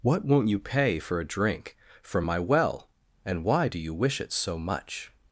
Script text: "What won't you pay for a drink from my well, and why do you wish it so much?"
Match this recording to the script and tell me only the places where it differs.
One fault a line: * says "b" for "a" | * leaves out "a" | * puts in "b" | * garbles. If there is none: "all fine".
all fine